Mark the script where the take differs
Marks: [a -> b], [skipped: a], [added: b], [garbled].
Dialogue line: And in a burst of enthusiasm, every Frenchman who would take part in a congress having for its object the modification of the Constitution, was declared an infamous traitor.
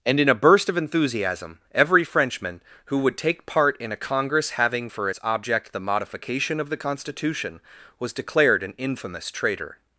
And in a burst of enthusiasm, every Frenchman who would take part in a congress having for its object the modification of the Constitution, was declared an infamous traitor.